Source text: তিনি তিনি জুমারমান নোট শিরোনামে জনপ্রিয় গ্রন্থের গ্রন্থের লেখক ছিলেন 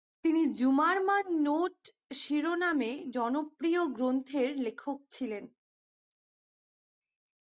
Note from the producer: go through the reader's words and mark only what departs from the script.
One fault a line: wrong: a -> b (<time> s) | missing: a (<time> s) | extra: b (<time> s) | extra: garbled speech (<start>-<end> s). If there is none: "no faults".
missing: তিনি (0.4 s)
missing: গ্রন্থের (4.5 s)